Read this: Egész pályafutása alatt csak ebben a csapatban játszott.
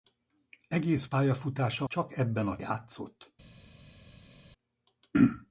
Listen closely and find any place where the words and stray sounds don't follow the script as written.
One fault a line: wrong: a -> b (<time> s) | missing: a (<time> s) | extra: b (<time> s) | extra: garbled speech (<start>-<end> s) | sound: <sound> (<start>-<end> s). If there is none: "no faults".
missing: alatt (1.9 s)
missing: csapatban (2.6 s)